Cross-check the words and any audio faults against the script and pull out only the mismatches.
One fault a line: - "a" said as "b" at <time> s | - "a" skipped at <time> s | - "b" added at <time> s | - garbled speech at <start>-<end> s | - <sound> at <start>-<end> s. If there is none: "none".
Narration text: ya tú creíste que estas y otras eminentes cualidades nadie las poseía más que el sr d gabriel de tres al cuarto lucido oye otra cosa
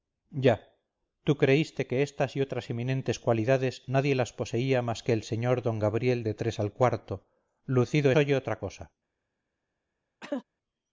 - cough at 10.2-10.4 s